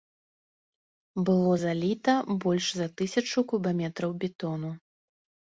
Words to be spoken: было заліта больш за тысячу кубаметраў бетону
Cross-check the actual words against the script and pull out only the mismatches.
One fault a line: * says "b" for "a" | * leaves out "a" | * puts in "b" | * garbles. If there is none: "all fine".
all fine